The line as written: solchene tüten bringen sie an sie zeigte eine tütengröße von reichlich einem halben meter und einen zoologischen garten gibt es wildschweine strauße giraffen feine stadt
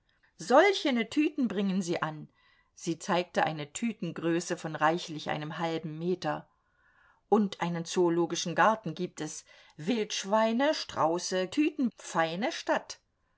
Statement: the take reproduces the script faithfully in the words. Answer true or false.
false